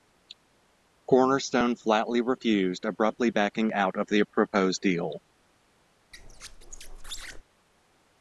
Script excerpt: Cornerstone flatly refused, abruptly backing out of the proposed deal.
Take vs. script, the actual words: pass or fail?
pass